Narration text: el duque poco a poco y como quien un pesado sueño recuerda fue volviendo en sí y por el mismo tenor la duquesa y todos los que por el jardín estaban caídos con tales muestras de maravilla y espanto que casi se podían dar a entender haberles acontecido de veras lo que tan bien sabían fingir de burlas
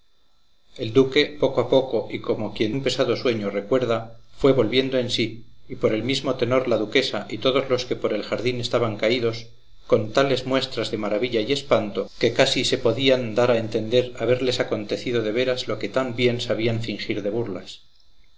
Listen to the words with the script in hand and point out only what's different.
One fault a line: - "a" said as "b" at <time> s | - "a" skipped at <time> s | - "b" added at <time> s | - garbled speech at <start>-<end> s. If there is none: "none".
none